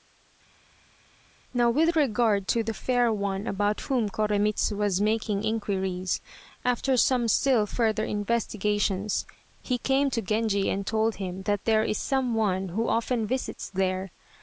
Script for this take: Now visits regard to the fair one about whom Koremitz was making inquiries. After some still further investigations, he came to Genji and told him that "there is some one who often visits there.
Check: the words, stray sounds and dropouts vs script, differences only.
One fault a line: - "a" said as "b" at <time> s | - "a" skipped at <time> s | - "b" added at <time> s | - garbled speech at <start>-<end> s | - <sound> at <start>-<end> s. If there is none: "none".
- "visits" said as "with" at 1.7 s